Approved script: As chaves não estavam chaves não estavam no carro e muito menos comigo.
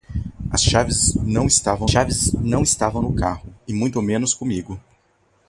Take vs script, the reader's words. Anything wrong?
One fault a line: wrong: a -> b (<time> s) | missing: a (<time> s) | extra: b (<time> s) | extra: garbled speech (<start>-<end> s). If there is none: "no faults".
no faults